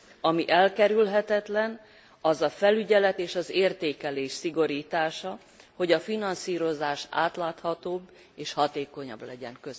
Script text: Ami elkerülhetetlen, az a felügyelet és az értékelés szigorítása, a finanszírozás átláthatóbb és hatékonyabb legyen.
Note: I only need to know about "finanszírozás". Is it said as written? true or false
true